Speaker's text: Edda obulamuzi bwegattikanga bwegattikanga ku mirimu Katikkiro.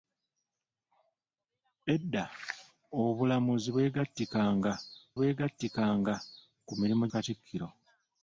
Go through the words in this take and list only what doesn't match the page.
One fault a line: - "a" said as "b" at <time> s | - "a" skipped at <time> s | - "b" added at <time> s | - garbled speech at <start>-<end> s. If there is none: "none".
none